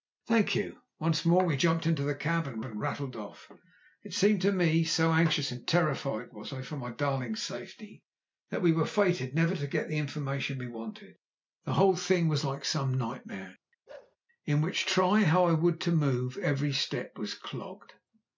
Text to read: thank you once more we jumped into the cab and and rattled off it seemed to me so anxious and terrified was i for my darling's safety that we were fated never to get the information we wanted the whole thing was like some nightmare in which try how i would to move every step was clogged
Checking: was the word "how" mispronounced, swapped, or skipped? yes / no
no